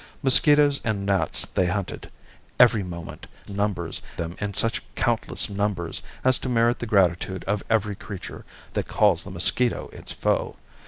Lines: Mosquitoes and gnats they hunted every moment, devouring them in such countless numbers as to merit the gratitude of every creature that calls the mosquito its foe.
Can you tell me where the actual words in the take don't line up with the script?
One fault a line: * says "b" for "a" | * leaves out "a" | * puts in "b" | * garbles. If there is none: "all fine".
* says "numbers" for "devouring"